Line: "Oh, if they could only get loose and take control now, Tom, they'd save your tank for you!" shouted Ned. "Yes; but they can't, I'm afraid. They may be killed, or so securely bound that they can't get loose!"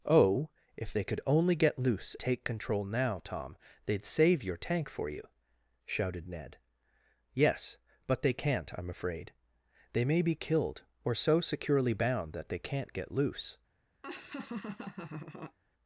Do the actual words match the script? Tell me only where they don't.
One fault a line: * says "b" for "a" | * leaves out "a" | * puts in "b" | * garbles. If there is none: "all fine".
* leaves out "and"